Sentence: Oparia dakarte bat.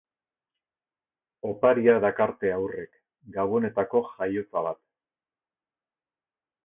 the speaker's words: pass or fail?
fail